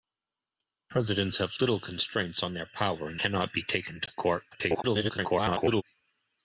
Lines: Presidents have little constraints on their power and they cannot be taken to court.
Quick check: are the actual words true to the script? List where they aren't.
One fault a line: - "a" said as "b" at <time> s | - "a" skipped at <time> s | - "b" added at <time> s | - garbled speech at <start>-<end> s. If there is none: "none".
- "they" skipped at 3.2 s
- garbled speech at 4.5-5.8 s